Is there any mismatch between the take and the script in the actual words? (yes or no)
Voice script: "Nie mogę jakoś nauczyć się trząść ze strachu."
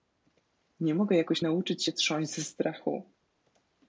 no